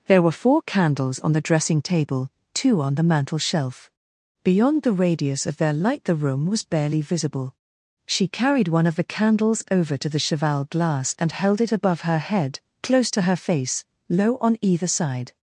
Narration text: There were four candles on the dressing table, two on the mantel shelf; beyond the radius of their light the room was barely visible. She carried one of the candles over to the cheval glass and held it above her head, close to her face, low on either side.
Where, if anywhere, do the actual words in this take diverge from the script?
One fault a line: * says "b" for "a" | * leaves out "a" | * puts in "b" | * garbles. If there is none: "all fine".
all fine